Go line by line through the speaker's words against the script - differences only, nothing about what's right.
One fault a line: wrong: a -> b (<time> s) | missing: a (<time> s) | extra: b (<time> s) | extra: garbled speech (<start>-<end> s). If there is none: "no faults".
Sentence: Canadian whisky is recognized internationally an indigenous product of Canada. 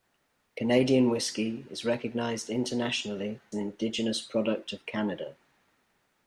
no faults